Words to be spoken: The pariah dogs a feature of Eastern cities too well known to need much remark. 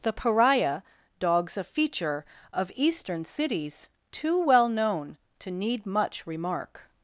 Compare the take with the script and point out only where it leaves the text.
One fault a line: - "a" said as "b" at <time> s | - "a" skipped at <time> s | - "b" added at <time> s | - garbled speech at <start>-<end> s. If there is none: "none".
none